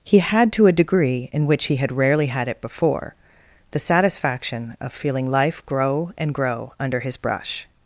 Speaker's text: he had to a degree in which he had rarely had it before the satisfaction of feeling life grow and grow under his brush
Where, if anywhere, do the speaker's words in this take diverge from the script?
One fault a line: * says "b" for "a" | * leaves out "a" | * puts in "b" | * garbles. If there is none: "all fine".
all fine